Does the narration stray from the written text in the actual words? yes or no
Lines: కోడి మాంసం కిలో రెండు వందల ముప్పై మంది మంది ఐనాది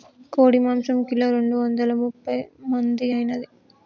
yes